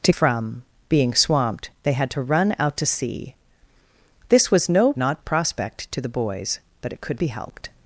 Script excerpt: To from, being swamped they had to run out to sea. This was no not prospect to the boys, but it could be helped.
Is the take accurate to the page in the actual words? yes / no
yes